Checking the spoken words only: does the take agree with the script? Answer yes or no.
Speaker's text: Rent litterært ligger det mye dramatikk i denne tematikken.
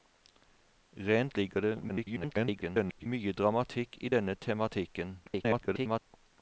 no